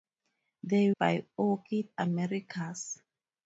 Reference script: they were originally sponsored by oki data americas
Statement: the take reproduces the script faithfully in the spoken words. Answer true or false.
false